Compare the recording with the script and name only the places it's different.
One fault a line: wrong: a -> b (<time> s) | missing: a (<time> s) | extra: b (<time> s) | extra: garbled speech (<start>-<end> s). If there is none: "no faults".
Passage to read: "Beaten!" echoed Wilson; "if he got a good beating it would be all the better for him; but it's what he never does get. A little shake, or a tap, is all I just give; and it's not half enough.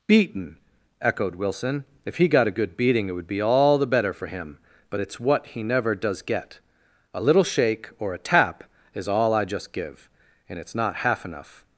no faults